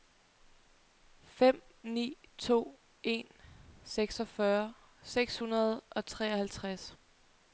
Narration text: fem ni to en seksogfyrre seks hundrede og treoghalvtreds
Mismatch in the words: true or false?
false